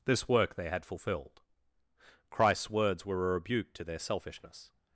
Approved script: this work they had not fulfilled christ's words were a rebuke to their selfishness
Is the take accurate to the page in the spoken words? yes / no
no